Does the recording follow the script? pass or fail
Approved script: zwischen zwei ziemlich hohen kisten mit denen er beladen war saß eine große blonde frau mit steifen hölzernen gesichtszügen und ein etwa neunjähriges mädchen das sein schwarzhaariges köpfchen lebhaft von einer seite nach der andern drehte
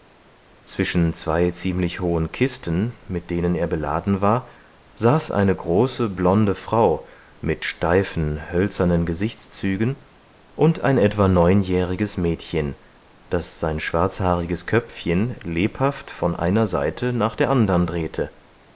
pass